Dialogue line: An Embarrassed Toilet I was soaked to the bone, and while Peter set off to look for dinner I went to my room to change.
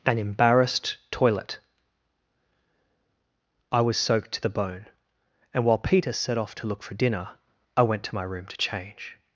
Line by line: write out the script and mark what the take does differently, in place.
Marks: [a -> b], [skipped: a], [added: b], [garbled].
An Embarrassed Toilet I was soaked to the bone, and while Peter set off to look for dinner I went to my room to change.